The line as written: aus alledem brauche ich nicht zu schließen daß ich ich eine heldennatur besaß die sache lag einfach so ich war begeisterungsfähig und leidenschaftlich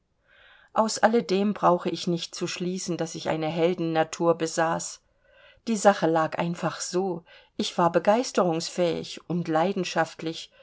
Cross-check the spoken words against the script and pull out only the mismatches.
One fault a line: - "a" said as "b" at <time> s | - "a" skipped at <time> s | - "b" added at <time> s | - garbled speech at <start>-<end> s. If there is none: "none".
- "ich" skipped at 3.3 s